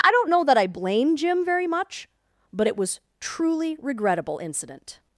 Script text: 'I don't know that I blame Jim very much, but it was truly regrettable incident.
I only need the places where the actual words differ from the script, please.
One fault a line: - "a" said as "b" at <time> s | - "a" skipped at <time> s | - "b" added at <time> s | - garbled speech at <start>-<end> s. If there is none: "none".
none